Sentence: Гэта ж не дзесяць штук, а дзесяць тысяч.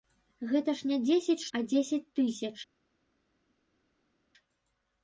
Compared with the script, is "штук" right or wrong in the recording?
wrong